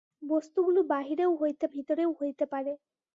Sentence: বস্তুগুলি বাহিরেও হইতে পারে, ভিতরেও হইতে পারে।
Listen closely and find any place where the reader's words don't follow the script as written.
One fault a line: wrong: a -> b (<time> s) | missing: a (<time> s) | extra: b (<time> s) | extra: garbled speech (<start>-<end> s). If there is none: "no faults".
missing: পারে (1.7 s)